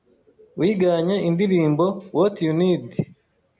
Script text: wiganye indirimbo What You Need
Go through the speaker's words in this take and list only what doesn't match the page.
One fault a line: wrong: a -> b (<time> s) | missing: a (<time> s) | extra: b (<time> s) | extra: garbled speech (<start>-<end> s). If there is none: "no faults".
no faults